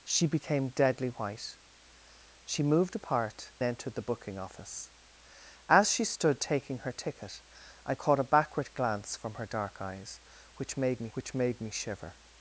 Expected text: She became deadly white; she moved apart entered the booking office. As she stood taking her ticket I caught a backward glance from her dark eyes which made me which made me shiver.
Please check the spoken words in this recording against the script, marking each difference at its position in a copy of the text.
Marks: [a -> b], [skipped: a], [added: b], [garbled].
She became deadly white; she moved apart entered the booking office. As she stood taking her ticket I caught a backward glance from her dark eyes which made me which made me shiver.